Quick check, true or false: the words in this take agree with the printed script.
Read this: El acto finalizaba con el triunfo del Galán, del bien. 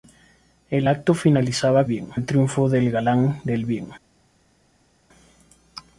false